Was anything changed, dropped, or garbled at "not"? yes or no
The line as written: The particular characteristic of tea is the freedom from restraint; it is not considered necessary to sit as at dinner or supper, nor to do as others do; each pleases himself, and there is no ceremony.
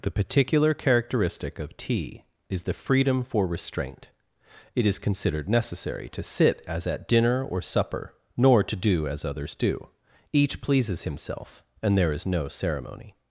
yes